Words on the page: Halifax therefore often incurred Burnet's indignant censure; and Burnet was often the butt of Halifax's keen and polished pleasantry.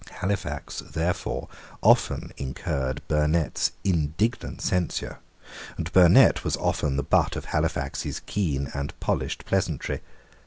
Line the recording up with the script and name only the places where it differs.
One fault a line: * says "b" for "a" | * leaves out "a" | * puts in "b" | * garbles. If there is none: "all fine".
all fine